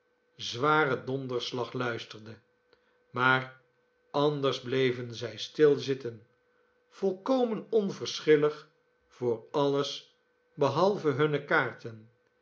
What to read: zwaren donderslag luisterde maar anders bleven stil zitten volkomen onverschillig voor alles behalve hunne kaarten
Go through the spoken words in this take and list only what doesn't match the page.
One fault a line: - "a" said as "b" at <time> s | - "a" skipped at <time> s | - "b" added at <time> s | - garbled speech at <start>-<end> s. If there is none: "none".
- "zij" added at 5.1 s